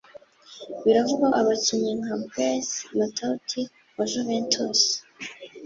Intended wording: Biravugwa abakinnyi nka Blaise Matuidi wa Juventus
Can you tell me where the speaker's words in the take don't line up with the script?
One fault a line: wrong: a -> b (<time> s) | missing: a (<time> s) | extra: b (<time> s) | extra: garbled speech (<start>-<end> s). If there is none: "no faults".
no faults